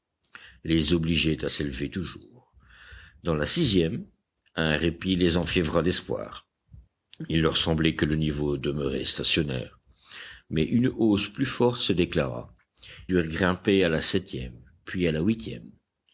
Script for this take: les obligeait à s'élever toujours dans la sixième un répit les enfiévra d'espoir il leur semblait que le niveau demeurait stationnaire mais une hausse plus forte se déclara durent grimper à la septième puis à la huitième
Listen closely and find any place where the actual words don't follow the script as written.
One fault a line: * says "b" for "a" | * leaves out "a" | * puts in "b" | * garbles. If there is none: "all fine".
all fine